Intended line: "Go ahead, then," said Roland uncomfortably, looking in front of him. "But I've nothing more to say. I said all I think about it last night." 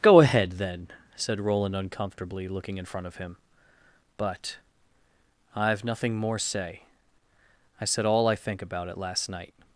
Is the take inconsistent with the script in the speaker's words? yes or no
yes